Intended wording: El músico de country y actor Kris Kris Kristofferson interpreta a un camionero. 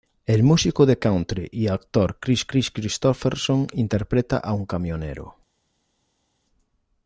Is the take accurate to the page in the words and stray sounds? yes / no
yes